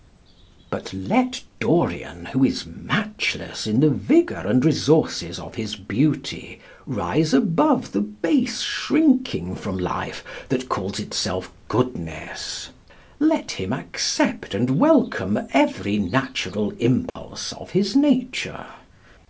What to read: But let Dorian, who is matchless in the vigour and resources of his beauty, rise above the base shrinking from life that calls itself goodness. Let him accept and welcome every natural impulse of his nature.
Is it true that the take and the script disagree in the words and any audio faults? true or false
true